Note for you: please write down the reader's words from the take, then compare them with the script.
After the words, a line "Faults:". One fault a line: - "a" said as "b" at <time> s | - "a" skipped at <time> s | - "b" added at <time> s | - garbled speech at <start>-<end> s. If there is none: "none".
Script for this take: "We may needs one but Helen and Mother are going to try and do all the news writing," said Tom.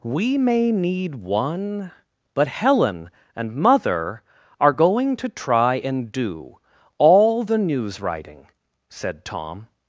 "We may need one but Helen and Mother are going to try and do all the news writing," said Tom.
Faults:
- "needs" said as "need" at 0.7 s